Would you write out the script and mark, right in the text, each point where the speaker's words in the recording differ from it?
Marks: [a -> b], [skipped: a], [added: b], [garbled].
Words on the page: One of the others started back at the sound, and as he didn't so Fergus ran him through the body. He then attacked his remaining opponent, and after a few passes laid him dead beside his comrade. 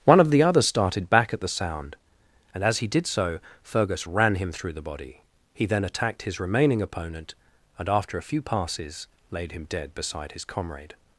One of the others started back at the sound, and as he [didn't -> did] so Fergus ran him through the body. He then attacked his remaining opponent, and after a few passes laid him dead beside his comrade.